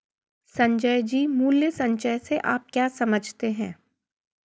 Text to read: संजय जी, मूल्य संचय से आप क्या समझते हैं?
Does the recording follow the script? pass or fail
pass